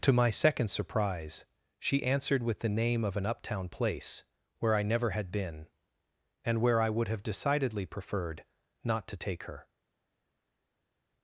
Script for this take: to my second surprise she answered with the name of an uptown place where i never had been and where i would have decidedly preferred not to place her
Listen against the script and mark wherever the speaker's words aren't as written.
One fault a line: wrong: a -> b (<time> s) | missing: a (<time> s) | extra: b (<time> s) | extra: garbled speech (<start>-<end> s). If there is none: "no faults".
wrong: place -> take (9.2 s)